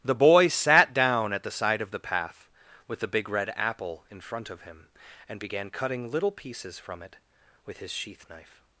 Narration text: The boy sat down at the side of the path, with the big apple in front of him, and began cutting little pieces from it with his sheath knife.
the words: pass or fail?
fail